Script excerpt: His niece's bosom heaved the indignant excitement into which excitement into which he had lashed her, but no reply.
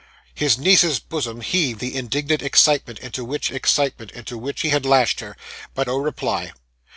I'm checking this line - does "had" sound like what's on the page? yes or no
yes